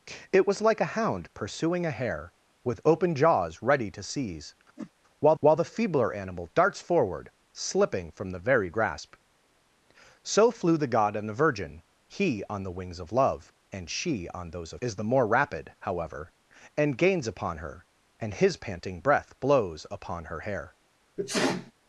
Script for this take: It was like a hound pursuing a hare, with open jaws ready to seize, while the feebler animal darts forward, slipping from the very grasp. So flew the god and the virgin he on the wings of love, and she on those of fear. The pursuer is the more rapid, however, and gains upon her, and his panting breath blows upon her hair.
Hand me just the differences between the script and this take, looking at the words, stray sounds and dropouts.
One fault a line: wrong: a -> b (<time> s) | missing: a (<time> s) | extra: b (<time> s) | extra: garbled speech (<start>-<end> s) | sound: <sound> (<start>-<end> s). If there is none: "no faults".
sound: whoosh (4.8-4.9 s)
extra: while (5.4 s)
missing: fear The pursuer (14.8 s)
sound: sneeze (21.2-21.7 s)